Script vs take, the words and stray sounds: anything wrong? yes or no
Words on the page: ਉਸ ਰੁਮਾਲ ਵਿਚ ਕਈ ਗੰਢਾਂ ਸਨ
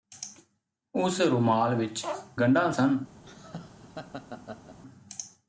yes